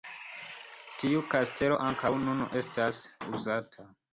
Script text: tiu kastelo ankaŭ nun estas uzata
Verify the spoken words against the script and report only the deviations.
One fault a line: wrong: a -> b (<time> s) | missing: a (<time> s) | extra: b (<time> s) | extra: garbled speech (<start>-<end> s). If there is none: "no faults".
no faults